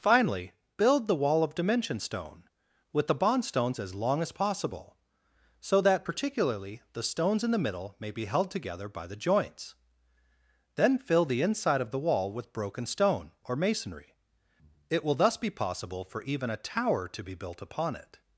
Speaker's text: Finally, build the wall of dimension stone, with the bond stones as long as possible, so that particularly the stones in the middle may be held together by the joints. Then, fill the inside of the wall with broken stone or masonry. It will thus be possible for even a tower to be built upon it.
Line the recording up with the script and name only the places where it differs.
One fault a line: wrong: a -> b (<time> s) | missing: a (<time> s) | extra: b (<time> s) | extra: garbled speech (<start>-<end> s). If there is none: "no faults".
no faults